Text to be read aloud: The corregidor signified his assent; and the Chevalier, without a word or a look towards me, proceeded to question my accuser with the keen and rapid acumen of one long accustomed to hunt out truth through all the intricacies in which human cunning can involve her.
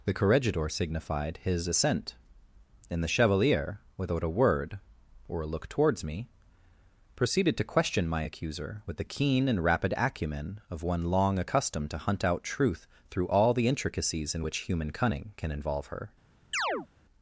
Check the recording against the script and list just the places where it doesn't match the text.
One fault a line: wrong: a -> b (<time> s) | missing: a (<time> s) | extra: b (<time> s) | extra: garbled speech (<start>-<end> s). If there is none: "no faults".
no faults